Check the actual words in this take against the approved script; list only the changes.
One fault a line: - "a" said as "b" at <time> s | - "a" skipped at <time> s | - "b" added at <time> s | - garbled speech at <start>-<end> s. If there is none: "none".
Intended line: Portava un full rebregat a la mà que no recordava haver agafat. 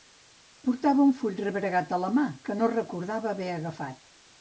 none